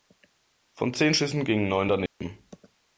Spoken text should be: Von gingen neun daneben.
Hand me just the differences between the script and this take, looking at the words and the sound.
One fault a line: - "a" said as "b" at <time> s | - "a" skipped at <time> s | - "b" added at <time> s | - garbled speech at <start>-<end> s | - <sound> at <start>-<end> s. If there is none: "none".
- "zehn Schüssen" added at 0.9 s
- dropout at 2.1-2.2 s